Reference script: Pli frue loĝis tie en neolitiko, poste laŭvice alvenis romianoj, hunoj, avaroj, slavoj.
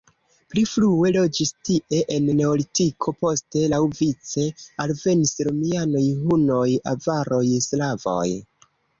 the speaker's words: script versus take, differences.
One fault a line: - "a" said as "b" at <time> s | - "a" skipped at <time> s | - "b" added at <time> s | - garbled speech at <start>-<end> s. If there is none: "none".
none